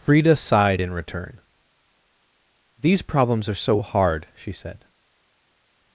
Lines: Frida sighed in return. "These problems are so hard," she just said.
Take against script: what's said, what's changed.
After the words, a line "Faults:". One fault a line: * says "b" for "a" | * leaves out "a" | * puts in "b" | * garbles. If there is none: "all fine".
Frida sighed in return. "These problems are so hard," she said.
Faults:
* leaves out "just"